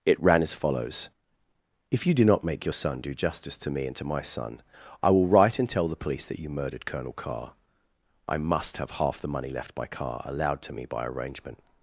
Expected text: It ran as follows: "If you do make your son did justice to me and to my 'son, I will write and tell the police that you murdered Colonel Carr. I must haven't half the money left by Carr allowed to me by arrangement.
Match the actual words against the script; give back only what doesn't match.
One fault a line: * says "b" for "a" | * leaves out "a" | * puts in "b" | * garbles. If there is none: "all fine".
* puts in "not"
* says "do" for "did"
* says "have" for "haven't"